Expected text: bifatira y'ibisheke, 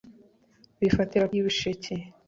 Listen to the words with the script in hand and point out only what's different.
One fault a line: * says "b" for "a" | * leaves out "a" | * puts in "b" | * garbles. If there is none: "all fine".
all fine